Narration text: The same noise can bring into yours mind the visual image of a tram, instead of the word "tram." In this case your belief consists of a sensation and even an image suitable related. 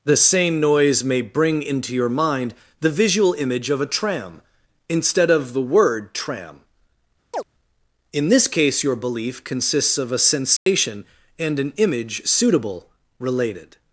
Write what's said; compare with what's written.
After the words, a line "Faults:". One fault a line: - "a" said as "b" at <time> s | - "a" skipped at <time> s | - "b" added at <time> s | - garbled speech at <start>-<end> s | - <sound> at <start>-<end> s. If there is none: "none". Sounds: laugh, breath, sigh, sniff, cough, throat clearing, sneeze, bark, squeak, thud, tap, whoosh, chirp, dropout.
The same noise may bring into your mind the visual image of a tram, instead of the word "tram." In this case your belief consists of a sensation and an image suitable related.
Faults:
- "can" said as "may" at 1.0 s
- "yours" said as "your" at 1.9 s
- chirp at 7.3-7.4 s
- dropout at 10.6-10.7 s
- "even" skipped at 11.6 s